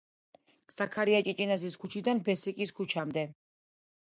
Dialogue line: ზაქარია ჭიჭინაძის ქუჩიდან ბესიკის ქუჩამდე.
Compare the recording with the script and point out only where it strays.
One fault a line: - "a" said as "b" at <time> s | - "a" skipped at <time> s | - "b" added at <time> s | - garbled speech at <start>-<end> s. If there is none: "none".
none